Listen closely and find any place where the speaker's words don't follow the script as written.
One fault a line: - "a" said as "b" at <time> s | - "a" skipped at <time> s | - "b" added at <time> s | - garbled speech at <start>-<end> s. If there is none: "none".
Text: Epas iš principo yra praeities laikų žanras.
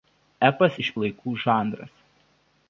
- "principo yra praeities" skipped at 0.9 s